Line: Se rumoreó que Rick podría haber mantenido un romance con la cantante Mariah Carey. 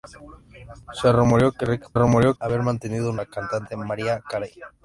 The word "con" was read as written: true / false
false